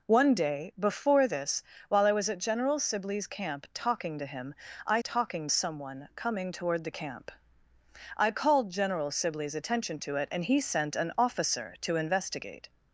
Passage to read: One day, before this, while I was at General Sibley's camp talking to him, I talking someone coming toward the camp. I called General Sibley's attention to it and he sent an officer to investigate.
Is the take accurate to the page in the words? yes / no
yes